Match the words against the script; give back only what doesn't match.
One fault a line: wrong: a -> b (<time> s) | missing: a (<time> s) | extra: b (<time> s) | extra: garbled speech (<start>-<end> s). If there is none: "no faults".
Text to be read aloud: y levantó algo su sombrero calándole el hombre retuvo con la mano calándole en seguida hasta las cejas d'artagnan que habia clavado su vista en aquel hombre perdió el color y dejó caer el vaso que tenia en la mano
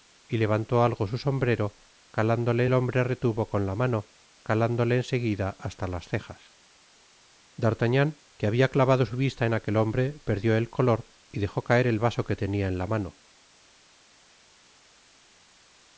no faults